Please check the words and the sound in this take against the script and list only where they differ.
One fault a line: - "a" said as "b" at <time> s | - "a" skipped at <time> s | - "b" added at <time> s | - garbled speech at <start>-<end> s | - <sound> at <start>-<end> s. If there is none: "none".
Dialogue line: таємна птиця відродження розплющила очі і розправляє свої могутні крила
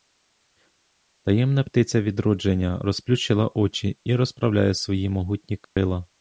- dropout at 5.6-5.8 s